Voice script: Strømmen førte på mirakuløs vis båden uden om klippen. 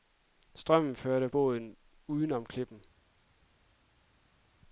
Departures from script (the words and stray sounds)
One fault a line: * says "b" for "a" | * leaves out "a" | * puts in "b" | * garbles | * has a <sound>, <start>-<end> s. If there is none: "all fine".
* leaves out "på mirakuløs vis"